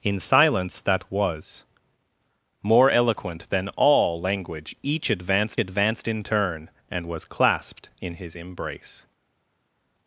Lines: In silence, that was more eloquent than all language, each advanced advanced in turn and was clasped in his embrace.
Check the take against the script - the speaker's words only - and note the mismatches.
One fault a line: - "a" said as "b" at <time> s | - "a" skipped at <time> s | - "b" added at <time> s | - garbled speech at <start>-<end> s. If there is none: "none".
none